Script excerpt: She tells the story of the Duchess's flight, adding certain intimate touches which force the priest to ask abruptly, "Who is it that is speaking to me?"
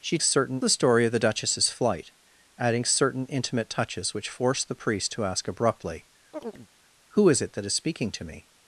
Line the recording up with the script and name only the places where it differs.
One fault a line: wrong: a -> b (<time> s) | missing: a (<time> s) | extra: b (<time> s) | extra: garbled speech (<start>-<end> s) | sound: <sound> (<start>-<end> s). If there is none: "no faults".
wrong: tells -> certain (0.2 s)
sound: chirp (6.3-6.7 s)